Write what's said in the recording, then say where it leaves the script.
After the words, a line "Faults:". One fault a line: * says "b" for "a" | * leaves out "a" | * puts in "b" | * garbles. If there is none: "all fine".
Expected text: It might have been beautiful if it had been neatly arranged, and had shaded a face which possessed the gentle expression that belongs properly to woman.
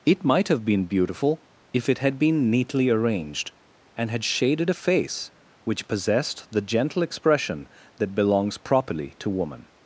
It might have been beautiful if it had been neatly arranged, and had shaded a face which possessed the gentle expression that belongs properly to woman.
Faults:
all fine